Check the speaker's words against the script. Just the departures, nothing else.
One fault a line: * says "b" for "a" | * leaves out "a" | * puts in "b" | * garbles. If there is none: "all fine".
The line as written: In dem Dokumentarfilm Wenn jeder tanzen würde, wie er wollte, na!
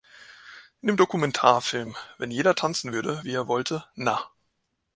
all fine